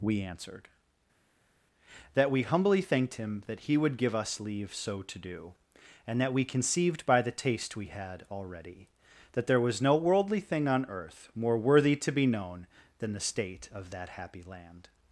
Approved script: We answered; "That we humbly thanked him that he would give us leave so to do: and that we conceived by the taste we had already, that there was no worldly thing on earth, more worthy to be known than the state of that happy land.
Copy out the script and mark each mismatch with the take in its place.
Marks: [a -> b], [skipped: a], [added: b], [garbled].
We answered; "That we humbly thanked him that he would give us leave so to do: and that we conceived by the taste we had already, that there was no worldly thing on earth, more worthy to be known than the state of that happy land.